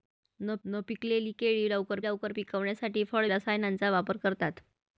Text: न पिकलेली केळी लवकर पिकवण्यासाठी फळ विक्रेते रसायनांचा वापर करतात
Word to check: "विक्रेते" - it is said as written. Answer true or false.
false